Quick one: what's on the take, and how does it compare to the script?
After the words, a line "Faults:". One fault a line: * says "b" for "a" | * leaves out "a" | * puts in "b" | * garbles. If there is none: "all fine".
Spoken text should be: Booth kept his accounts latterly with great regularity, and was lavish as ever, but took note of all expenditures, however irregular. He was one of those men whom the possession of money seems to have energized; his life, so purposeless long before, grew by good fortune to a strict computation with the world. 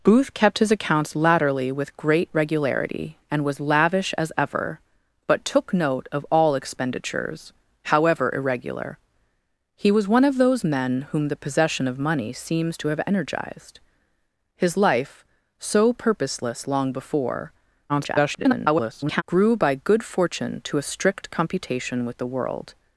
Booth kept his accounts latterly with great regularity, and was lavish as ever, but took note of all expenditures, however irregular. He was one of those men whom the possession of money seems to have energized; his life, so purposeless long before, [garbled] grew by good fortune to a strict computation with the world.
Faults:
* garbles